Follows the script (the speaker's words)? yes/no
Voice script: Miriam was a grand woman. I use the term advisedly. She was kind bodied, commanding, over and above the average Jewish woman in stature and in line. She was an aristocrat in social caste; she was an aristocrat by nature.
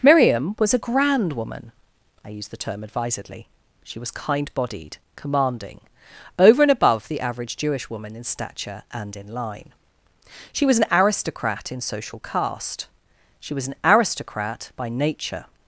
yes